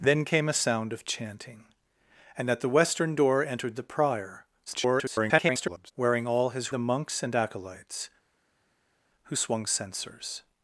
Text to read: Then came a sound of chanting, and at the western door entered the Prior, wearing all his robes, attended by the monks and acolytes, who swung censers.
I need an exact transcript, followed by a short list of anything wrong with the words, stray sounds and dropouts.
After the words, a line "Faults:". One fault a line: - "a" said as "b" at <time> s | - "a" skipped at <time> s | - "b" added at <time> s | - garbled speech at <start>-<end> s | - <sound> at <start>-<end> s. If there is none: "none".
Then came a sound of chanting, and at the western door entered the Prior, [garbled] wearing all his the monks and acolytes, who swung censers.
Faults:
- garbled speech at 4.7-5.9 s
- "robes attended by" skipped at 6.7 s